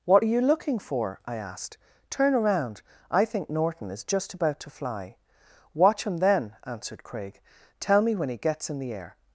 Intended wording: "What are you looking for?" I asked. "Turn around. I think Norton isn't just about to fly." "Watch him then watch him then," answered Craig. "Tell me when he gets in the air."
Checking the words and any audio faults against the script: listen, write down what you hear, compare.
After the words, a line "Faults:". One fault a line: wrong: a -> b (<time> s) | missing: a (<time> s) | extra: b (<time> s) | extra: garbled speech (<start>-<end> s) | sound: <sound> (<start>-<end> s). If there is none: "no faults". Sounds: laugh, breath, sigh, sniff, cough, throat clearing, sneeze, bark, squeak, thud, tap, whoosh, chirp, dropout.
"What are you looking for?" I asked. "Turn around. I think Norton is just about to fly." "Watch him then," answered Craig. "Tell me when he gets in the air."
Faults:
wrong: isn't -> is (3.9 s)
missing: watch him then (6.5 s)